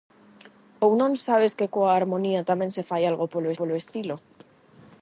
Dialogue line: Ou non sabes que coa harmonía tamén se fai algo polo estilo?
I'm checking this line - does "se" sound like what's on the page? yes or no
yes